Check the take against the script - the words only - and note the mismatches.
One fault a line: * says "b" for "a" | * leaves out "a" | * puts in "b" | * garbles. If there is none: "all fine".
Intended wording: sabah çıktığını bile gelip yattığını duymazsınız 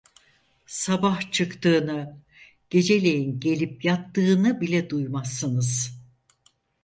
* says "geceleyin" for "bile"
* puts in "bile"